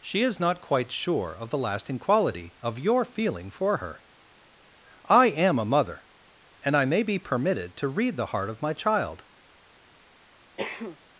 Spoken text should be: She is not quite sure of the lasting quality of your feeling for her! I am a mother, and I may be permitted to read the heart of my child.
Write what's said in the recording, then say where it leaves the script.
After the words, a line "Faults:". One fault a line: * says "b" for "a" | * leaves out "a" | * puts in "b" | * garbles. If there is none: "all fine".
She is not quite sure of the lasting quality of your feeling for her! I am a mother, and I may be permitted to read the heart of my child.
Faults:
all fine